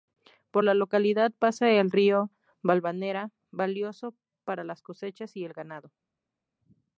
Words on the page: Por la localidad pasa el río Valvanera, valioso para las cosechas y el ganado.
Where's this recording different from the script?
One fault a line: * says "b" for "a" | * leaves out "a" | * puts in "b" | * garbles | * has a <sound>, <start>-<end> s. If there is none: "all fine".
all fine